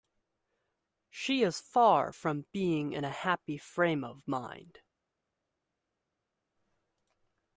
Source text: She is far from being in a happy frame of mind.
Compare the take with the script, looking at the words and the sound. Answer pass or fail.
pass